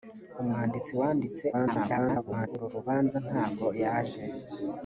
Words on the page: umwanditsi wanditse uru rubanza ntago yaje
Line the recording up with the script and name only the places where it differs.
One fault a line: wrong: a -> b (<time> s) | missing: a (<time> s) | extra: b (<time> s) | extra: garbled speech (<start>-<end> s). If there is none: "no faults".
extra: garbled speech (1.5-2.5 s)